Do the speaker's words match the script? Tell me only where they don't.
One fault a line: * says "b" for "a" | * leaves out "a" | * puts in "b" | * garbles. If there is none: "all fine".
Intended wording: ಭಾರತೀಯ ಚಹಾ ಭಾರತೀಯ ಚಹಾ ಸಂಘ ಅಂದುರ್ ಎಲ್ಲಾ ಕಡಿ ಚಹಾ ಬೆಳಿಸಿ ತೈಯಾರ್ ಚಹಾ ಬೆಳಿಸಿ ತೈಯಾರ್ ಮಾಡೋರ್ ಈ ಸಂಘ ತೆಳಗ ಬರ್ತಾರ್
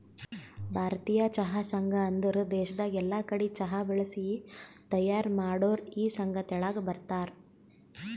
* leaves out "ಭಾರತೀಯ ಚಹಾ"
* puts in "ದೇಶದಾಗ್"
* leaves out "ಚಹಾ ಬೆಳಿಸಿ ತೈಯಾರ್"